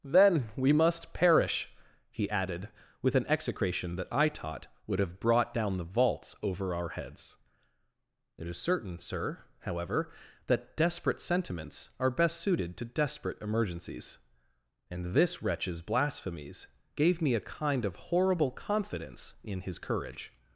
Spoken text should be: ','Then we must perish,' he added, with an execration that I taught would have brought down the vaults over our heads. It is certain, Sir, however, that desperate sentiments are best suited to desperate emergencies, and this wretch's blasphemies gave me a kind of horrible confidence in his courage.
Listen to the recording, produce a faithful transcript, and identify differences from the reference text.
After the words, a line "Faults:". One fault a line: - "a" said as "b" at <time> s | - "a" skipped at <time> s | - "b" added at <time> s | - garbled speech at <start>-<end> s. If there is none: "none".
','Then we must perish,' he added, with an execration that I taught would have brought down the vaults over our heads. It is certain, Sir, however, that desperate sentiments are best suited to desperate emergencies, and this wretch's blasphemies gave me a kind of horrible confidence in his courage.
Faults:
none